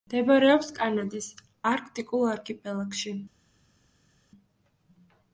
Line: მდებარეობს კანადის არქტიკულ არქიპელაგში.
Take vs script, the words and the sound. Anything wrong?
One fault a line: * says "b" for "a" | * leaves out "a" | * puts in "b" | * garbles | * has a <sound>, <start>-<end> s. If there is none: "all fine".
all fine